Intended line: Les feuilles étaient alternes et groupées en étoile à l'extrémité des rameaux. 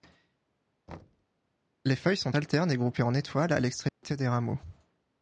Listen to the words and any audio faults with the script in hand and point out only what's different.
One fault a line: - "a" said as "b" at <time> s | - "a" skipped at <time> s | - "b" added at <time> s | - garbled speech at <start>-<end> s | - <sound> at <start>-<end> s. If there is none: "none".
- thud at 0.9-1.3 s
- "étaient" said as "sont" at 2.2 s
- dropout at 3.9-4.0 s